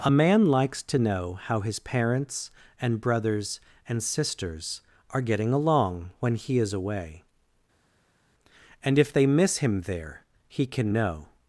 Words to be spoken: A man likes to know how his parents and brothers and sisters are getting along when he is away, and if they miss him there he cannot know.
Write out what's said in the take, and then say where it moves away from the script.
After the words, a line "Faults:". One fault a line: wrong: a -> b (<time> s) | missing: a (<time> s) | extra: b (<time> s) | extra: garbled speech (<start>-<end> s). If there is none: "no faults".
A man likes to know how his parents and brothers and sisters are getting along when he is away, and if they miss him there he can know.
Faults:
wrong: cannot -> can (10.6 s)